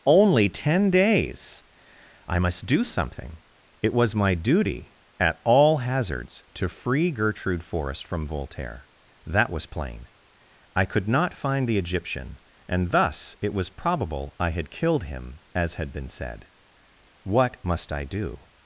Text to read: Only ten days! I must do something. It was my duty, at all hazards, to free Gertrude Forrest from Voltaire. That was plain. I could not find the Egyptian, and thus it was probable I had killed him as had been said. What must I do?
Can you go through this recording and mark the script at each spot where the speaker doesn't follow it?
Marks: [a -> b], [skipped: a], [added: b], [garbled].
Only ten days! I must do something. It was my duty, at all hazards, to free Gertrude Forrest from Voltaire. That was plain. I could not find the Egyptian, and thus it was probable I had killed him as had been said. What must I do?